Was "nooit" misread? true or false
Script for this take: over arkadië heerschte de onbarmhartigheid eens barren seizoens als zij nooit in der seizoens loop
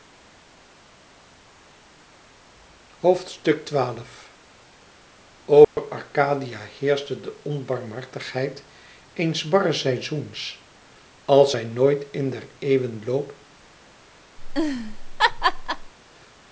false